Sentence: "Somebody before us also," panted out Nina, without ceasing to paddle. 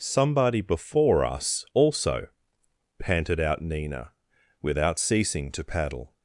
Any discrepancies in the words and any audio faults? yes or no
no